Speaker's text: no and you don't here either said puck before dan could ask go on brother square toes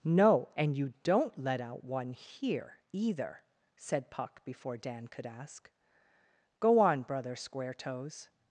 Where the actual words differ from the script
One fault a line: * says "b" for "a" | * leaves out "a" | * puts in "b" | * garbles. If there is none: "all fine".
* puts in "let out one"